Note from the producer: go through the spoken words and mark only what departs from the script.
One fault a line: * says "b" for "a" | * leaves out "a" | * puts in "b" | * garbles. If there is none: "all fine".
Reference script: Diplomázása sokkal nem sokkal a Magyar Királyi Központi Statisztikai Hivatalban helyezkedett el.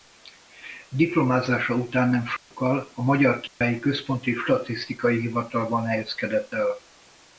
* says "után" for "sokkal"